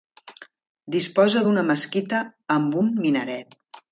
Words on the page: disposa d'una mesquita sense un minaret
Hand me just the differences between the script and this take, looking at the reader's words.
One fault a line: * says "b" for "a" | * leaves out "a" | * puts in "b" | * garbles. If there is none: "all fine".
* says "amb" for "sense"